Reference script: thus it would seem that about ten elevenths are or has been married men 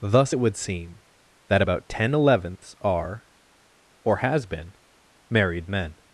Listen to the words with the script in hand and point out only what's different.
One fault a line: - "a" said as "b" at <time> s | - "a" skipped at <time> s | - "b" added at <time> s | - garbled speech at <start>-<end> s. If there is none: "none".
none